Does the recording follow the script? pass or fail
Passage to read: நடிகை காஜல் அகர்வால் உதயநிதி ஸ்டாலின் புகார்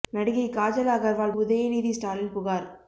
pass